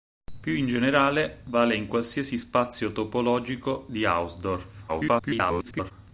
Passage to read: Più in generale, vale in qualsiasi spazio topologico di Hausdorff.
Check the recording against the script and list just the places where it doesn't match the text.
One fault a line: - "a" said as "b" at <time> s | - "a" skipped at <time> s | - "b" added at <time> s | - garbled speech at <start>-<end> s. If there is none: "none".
- garbled speech at 4.9-5.9 s